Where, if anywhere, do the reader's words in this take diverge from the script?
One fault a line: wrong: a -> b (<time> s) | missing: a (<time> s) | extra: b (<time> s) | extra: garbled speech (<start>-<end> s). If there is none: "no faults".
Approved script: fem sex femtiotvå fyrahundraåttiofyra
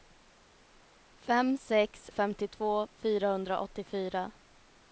no faults